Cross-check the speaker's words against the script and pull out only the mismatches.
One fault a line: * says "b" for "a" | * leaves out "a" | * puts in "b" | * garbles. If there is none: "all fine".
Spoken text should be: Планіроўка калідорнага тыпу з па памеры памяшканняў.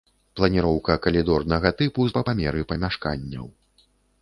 all fine